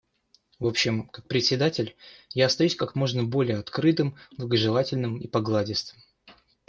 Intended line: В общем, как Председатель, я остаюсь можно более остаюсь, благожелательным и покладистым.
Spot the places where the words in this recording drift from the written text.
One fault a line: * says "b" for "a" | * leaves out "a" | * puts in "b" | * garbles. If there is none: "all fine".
* puts in "как"
* says "открытым" for "остаюсь"